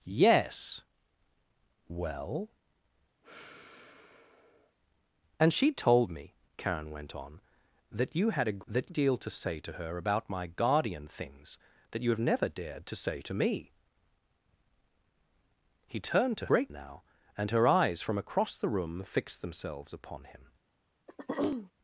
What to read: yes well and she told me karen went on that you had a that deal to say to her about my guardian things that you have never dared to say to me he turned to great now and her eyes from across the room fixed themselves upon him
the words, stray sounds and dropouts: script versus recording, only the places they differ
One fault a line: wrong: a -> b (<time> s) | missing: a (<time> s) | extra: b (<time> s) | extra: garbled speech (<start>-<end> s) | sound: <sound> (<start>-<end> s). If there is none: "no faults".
sound: sigh (3.2-4.8 s)
sound: throat clearing (21.1-21.7 s)